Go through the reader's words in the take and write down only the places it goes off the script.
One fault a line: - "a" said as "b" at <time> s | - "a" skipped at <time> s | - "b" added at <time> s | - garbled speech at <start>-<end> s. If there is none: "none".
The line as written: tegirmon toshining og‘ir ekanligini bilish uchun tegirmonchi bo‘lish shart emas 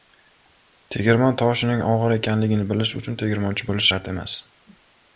none